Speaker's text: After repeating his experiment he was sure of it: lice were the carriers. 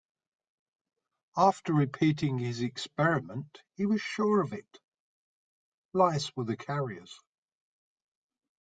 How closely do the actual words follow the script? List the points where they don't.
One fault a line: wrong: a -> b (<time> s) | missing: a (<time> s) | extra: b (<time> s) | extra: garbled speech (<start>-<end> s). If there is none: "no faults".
no faults